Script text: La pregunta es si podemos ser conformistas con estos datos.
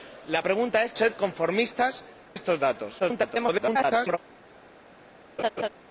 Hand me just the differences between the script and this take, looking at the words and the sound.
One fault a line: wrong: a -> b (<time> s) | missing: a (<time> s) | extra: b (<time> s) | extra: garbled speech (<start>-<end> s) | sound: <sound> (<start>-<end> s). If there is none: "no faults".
missing: si podemos (0.9 s)
missing: con (2.0 s)
extra: garbled speech (3.0-4.2 s)
sound: laugh (5.4-5.7 s)